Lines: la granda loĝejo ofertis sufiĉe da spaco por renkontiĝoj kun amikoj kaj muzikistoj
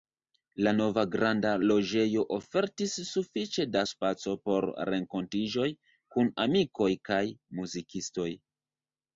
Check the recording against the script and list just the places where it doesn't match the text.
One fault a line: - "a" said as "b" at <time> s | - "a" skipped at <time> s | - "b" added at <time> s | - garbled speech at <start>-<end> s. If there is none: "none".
- "nova" added at 0.8 s